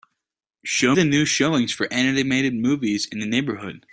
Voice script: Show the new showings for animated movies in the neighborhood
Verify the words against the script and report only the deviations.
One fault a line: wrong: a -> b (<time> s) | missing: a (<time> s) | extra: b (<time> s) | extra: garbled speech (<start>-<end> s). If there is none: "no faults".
no faults